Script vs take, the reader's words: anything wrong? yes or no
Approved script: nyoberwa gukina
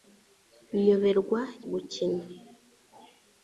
no